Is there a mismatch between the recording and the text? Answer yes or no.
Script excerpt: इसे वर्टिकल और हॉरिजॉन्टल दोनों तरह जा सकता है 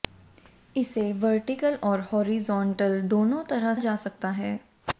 no